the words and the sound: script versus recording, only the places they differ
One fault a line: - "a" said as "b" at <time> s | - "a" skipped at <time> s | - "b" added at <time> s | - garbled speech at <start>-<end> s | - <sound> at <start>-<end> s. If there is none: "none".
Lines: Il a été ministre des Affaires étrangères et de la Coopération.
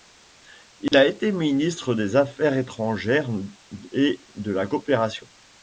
- dropout at 0.9-0.9 s